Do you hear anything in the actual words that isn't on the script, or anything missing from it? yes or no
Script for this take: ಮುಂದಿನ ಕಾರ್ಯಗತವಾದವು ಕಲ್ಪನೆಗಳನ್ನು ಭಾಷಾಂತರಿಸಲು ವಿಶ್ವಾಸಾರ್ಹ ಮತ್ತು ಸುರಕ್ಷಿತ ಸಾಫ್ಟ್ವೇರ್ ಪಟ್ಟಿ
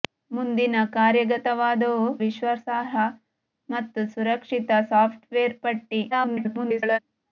yes